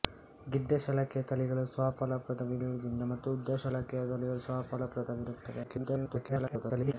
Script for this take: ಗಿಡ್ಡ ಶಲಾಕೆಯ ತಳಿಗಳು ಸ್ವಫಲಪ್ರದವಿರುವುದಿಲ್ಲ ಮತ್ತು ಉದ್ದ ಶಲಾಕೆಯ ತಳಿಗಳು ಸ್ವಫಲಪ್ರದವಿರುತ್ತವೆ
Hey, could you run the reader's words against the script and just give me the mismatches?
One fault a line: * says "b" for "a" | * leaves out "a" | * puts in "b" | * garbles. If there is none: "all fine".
* garbles